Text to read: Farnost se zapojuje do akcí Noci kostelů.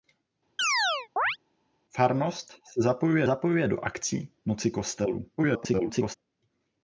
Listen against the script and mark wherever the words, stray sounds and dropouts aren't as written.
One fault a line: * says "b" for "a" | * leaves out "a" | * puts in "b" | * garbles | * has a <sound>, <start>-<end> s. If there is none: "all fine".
* has a chirp, 0.6-1.4 s
* puts in "zapojuje"
* garbles